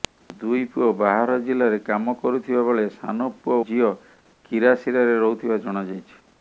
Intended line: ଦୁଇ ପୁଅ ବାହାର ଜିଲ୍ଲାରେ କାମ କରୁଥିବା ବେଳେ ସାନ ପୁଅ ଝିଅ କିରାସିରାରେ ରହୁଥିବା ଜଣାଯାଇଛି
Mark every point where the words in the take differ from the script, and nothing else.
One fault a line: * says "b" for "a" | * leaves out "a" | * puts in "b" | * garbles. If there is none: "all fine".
all fine